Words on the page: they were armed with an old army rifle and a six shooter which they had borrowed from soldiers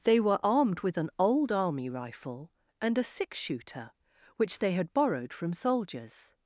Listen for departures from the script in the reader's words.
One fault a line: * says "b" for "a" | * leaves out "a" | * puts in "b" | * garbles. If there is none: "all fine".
all fine